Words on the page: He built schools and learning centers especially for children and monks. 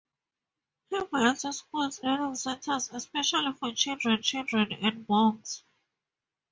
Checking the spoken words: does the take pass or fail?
fail